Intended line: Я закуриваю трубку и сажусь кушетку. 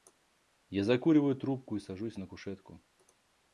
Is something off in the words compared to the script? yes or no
yes